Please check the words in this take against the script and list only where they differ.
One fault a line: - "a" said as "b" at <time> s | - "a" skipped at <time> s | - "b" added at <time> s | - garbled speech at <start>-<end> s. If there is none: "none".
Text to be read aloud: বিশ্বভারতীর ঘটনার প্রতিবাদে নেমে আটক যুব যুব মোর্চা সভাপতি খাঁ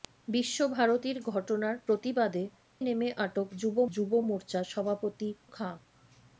none